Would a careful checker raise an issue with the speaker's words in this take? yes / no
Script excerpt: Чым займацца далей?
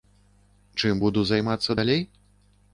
yes